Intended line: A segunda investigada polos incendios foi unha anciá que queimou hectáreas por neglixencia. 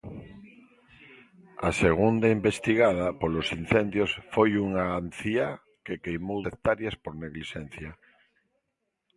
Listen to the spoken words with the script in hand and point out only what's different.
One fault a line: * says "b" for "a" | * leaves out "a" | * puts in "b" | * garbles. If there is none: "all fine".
all fine